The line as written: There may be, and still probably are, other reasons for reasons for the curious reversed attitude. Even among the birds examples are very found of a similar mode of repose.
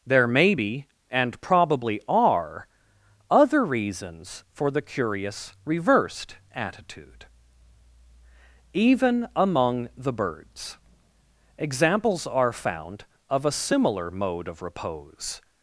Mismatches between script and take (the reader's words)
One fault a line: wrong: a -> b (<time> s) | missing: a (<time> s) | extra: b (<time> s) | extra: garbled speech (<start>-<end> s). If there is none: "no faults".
missing: still (1.4 s)
missing: reasons for (4.7 s)
missing: very (12.5 s)